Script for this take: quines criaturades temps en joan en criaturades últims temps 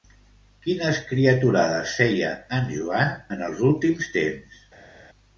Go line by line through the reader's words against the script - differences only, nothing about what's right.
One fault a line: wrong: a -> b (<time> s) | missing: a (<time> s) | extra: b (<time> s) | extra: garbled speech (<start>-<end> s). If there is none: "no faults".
wrong: temps -> feia (2.0 s)
wrong: criaturades -> els (3.5 s)